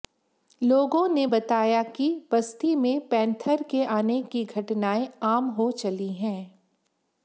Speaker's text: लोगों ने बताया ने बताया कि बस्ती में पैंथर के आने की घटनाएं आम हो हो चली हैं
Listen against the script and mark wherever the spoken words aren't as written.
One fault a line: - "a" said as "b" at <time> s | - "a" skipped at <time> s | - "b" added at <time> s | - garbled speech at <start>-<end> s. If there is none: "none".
- "ने बताया" skipped at 1.8 s
- "हो" skipped at 5.7 s